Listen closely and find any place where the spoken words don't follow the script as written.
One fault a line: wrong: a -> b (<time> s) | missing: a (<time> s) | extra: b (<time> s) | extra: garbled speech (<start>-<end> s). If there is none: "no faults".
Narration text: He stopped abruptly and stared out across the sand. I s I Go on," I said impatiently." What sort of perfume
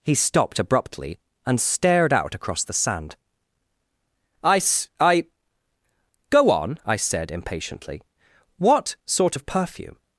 no faults